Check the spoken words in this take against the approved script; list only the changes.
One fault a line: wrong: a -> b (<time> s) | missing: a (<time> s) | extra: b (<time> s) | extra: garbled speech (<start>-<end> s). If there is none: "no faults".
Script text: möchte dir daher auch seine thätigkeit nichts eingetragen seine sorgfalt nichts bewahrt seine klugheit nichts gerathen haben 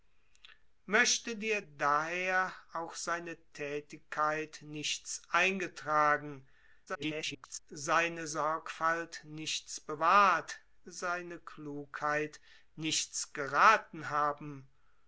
extra: garbled speech (6.9-7.6 s)